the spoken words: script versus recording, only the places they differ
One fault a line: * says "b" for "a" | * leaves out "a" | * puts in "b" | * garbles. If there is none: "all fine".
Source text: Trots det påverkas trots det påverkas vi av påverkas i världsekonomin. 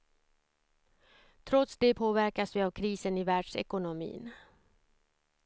* leaves out "trots det påverkas"
* says "krisen" for "påverkas"